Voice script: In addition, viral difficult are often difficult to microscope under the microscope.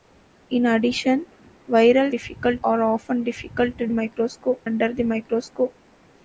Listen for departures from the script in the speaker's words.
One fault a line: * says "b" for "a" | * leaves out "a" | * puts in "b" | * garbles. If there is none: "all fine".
all fine